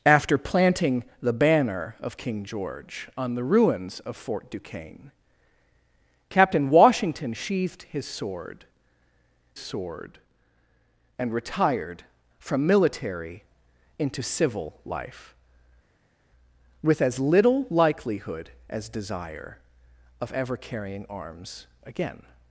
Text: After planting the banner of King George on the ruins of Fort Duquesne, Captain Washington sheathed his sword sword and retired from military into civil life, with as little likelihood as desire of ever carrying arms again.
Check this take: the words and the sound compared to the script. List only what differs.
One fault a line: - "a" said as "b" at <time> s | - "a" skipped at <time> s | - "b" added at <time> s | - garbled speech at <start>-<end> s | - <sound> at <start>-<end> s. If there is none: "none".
none